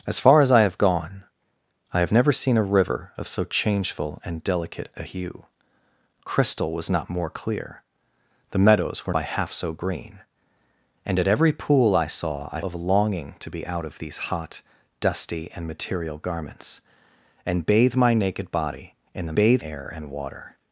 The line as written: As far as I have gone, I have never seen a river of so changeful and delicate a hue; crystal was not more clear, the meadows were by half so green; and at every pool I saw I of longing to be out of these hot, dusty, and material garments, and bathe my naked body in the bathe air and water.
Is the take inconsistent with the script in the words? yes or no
no